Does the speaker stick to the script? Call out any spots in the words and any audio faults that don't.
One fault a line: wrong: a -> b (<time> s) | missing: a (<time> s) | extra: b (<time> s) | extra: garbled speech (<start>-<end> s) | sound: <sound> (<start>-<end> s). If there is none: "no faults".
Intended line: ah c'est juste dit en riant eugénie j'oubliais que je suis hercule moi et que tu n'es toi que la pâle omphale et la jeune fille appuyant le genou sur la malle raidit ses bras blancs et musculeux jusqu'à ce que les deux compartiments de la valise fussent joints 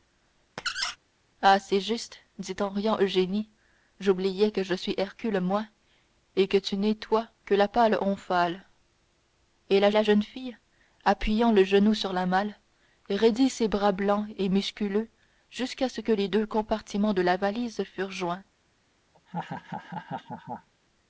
sound: squeak (0.6-1.0 s)
extra: la (9.9 s)
sound: laugh (19.1-20.7 s)